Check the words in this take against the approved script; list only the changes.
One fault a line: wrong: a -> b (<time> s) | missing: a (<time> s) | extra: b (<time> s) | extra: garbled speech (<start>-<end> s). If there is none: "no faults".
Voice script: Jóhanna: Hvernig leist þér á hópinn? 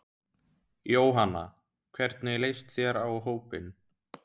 no faults